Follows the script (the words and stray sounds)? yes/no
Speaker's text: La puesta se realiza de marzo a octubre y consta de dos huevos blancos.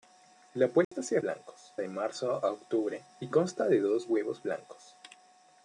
no